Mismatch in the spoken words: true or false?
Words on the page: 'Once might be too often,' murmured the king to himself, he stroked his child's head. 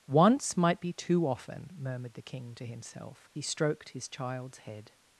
false